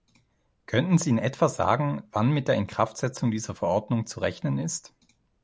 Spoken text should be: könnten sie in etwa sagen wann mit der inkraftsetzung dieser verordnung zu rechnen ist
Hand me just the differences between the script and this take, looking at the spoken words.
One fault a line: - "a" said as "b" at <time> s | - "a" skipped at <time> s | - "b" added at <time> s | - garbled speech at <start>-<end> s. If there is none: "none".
none